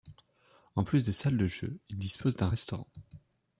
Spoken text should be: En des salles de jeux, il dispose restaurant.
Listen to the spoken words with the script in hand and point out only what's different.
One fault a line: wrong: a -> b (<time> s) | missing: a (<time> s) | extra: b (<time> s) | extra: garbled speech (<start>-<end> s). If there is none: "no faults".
extra: plus (0.8 s)
extra: d'un (2.4 s)